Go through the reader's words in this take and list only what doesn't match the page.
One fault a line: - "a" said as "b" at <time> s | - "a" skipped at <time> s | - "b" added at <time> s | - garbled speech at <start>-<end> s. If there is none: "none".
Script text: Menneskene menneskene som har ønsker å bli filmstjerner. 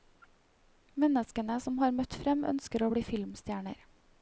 - "menneskene" skipped at 1.6 s
- "møtt frem" added at 2.0 s